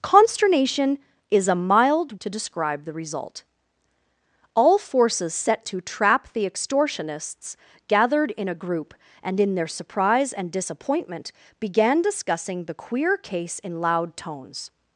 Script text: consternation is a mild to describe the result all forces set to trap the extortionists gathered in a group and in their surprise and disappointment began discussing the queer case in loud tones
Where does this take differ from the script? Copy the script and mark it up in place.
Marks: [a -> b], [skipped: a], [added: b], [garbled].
consternation is a mild to describe the result all forces set to trap the extortionists gathered in a group and in their surprise and disappointment began discussing the queer case in loud tones